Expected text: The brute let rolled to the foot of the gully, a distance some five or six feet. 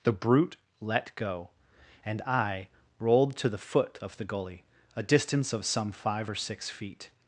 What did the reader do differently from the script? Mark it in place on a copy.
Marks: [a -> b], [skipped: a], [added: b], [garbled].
The brute let [added: go and I] rolled to the foot of the gully, a distance [added: of] some five or six feet.